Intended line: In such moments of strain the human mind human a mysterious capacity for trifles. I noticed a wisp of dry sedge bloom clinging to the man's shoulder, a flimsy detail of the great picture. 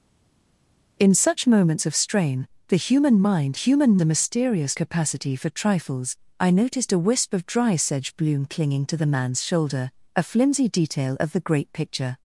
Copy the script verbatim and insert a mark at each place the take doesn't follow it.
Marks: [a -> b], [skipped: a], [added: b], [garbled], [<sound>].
In such moments of strain the human mind human a mysterious capacity for trifles. I noticed a wisp of dry sedge bloom clinging to the man's shoulder, a flimsy detail of the great picture.